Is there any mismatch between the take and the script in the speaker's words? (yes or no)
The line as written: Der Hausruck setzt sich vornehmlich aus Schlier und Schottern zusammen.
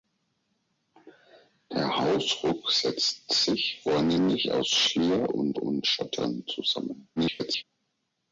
yes